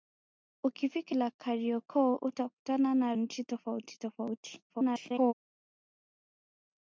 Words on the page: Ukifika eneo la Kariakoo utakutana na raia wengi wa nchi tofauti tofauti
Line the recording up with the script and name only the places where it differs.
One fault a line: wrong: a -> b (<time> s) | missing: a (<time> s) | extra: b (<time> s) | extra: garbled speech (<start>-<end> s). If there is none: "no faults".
missing: eneo (1.1 s)
missing: raia wengi wa (3.1 s)
extra: garbled speech (4.7-5.3 s)